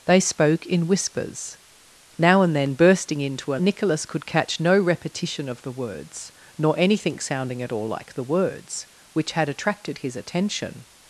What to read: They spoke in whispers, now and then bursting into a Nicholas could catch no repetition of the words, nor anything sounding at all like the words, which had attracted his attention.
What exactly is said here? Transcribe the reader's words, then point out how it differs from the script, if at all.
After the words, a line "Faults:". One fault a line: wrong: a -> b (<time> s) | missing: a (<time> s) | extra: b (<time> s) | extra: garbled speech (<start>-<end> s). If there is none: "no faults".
They spoke in whispers, now and then bursting into a Nicholas could catch no repetition of the words, nor anything sounding at all like the words, which had attracted his attention.
Faults:
no faults